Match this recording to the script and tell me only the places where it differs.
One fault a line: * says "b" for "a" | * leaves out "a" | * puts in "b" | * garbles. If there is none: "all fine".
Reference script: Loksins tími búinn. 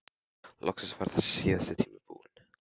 * puts in "var þessi síðasti"